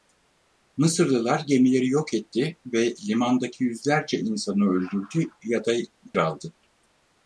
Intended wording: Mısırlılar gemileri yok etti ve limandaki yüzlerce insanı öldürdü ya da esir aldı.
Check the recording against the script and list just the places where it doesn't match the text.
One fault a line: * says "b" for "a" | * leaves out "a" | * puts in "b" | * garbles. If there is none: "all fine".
* leaves out "esir"